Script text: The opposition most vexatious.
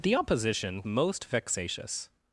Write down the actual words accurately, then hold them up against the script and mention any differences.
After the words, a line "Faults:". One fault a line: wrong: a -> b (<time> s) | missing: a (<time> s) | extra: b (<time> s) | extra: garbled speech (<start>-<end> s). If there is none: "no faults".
The opposition most vexatious.
Faults:
no faults